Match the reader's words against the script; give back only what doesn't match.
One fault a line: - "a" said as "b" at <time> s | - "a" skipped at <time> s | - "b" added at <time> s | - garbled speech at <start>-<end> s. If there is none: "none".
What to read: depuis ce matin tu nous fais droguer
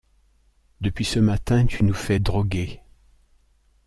none